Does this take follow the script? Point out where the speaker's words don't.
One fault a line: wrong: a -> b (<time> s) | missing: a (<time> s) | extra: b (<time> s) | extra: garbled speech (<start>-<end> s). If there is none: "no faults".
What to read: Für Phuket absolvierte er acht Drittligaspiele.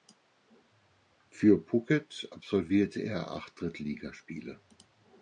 no faults